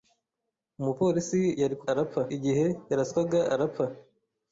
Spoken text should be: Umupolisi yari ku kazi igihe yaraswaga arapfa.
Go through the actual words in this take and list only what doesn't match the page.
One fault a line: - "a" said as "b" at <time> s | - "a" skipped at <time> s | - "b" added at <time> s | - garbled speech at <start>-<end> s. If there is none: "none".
- "kazi" said as "arapfa" at 1.9 s